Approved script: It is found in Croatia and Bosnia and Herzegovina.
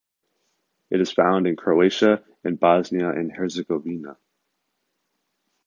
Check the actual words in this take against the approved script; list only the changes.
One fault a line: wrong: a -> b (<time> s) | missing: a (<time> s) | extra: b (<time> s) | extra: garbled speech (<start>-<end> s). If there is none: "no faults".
no faults